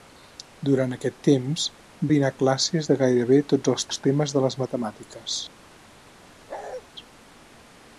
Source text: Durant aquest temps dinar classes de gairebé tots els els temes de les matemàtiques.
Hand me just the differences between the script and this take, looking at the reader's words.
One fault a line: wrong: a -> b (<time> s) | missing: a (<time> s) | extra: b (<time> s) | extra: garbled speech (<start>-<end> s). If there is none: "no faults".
no faults